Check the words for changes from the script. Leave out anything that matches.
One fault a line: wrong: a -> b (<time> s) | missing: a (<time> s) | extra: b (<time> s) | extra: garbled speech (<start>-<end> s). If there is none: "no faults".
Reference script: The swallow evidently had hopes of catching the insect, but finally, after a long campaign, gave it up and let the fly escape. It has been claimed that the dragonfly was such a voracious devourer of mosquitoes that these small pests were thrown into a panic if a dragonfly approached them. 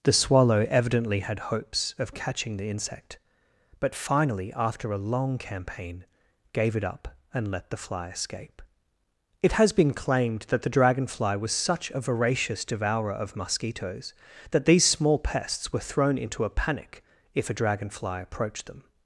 no faults